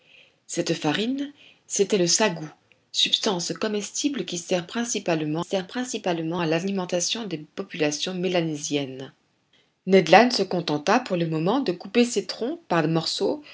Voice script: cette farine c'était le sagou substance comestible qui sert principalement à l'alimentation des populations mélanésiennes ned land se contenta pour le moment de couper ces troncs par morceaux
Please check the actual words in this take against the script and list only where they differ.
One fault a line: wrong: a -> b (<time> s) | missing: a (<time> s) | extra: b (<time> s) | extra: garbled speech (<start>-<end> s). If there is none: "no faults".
extra: sert principalement (5.4 s)